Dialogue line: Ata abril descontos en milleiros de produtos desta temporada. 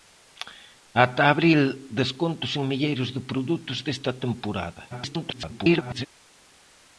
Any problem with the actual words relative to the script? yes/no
yes